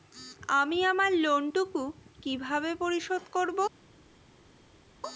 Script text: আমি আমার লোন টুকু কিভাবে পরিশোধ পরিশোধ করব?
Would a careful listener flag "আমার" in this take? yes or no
no